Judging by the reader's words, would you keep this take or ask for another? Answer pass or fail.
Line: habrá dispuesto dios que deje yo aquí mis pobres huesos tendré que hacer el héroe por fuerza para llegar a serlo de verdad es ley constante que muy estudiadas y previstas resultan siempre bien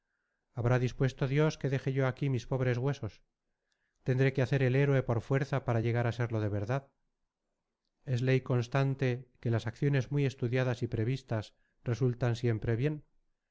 fail